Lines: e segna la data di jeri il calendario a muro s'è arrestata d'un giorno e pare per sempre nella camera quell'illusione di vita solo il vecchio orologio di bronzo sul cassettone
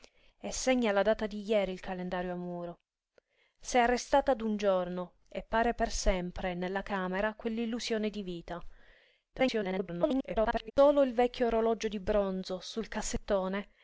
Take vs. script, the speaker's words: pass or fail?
fail